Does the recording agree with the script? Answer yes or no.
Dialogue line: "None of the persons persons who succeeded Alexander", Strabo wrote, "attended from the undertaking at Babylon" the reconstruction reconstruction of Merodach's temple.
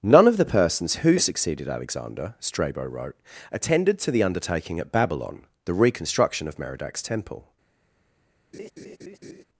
no